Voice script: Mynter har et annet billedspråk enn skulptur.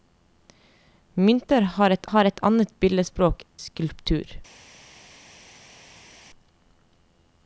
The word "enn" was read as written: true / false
false